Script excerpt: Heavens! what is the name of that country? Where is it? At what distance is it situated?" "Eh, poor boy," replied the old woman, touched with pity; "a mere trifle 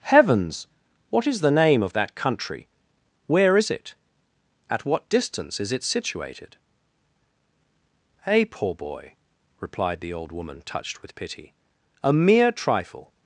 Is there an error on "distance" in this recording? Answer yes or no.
no